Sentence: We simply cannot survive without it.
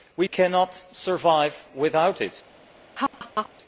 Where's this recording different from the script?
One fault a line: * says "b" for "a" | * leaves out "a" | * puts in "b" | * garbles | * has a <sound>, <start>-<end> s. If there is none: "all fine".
* leaves out "simply"
* has a laugh, 3.0-3.5 s